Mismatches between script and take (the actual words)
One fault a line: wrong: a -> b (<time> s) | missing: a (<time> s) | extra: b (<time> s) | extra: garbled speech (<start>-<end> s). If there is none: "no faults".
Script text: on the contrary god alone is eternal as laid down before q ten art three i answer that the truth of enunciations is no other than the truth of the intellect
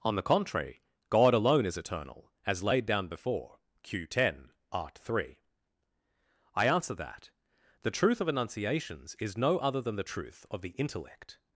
no faults